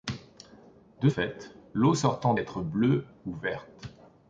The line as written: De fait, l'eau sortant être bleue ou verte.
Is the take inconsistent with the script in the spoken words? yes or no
no